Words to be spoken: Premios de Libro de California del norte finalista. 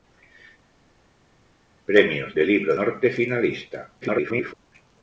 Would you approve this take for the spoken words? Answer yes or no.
no